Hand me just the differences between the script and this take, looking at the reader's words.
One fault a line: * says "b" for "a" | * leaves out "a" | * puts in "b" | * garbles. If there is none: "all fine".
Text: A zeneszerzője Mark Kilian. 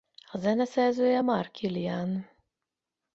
all fine